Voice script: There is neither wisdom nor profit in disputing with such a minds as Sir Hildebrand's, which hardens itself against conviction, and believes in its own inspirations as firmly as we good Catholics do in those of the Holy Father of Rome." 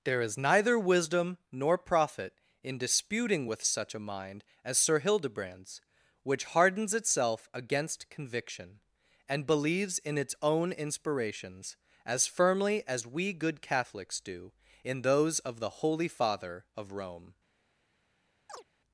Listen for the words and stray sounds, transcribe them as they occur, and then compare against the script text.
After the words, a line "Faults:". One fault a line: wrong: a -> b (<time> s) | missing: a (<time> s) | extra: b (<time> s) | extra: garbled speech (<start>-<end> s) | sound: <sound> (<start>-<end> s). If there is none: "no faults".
There is neither wisdom nor profit in disputing with such a mind as Sir Hildebrand's, which hardens itself against conviction, and believes in its own inspirations as firmly as we good Catholics do in those of the Holy Father of Rome."
Faults:
wrong: minds -> mind (4.0 s)
sound: chirp (18.5-18.6 s)